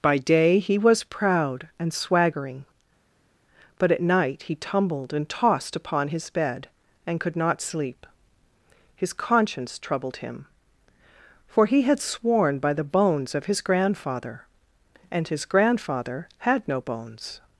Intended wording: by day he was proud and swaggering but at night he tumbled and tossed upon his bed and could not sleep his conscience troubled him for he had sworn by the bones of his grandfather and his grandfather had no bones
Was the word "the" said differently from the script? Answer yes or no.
no